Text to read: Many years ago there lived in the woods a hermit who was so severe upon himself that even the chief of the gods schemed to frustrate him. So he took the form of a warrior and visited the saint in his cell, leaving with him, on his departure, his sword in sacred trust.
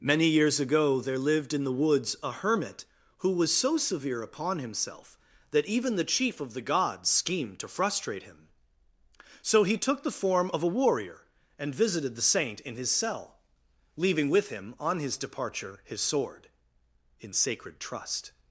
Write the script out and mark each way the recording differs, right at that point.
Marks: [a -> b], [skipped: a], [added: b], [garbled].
Many years ago there lived in the woods a hermit who was so severe upon himself that even the chief of the gods schemed to frustrate him. So he took the form of a warrior and visited the saint in his cell, leaving with him, on his departure, his sword in sacred trust.